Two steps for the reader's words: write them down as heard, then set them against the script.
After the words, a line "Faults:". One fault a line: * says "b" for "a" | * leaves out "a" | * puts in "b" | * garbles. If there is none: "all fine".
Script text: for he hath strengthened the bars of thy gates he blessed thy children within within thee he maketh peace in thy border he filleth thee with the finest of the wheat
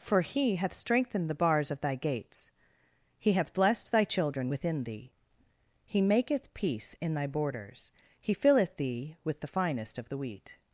for he hath strengthened the bars of thy gates he hath blessed thy children within thee he maketh peace in thy borders he filleth thee with the finest of the wheat
Faults:
* puts in "hath"
* leaves out "within"
* says "borders" for "border"